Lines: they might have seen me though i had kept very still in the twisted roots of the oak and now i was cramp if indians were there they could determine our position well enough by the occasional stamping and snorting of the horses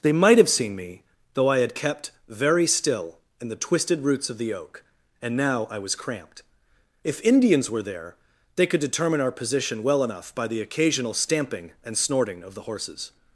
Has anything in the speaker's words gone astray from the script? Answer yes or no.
yes